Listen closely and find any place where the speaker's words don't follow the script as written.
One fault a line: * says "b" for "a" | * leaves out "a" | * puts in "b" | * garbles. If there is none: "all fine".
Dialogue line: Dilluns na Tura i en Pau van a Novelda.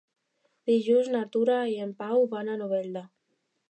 all fine